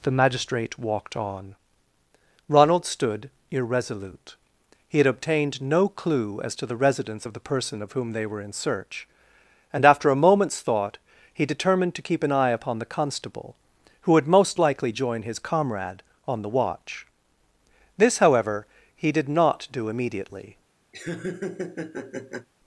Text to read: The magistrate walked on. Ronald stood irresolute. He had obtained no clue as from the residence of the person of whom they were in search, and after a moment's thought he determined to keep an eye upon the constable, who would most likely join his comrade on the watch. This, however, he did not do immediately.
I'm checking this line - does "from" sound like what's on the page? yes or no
no